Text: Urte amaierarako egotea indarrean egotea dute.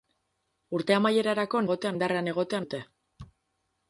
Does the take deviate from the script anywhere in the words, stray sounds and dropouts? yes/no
no